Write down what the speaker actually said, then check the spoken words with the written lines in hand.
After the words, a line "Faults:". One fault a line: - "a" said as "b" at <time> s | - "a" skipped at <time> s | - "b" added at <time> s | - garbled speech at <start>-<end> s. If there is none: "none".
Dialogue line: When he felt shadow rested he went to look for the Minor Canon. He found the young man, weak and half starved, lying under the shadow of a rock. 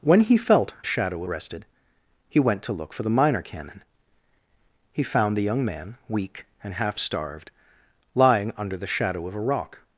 When he felt shadow rested he went to look for the Minor Canon. He found the young man, weak and half starved, lying under the shadow of a rock.
Faults:
none